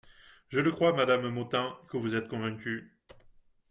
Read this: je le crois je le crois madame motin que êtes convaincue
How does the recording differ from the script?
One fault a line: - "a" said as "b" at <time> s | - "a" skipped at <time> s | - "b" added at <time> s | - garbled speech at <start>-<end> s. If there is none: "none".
- "je le crois" skipped at 0.9 s
- "vous" added at 2.0 s